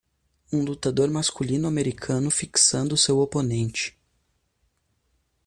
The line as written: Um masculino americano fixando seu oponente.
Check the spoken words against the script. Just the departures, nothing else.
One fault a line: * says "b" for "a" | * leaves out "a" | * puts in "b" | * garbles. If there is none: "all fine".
* puts in "lutador"